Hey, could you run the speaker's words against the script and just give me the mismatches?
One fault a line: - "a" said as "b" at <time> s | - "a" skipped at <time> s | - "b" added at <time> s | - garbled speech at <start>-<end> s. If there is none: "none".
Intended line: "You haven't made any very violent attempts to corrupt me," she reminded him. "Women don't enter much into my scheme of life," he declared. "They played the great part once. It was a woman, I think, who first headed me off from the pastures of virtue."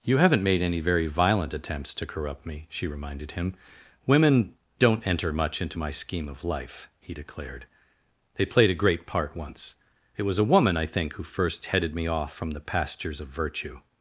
- "the" said as "a" at 8.7 s